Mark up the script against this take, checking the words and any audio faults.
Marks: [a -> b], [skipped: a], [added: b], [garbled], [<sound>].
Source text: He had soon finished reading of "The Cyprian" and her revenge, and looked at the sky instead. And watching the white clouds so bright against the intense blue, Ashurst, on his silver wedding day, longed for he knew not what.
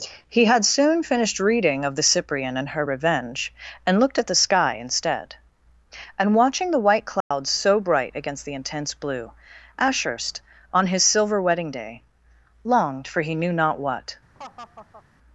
He had soon finished reading of "The Cyprian" and her revenge, and looked at the sky instead. And watching the white clouds [dropout] so bright against the intense blue, Ashurst, on his silver wedding day, longed for he knew not what. [laugh]